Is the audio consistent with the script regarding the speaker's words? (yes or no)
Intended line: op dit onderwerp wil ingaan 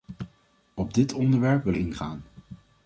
yes